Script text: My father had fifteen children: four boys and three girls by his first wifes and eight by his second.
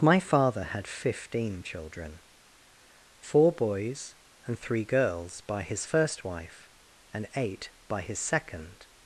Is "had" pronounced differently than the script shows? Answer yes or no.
no